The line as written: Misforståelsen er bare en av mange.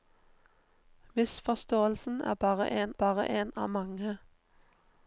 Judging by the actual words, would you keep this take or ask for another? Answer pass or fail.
fail